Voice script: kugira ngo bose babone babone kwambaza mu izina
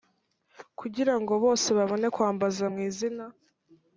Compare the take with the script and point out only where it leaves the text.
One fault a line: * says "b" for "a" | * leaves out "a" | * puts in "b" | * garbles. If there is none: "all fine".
* leaves out "babone"